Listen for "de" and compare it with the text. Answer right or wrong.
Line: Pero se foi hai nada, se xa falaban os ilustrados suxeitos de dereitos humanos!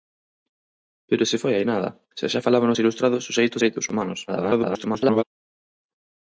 wrong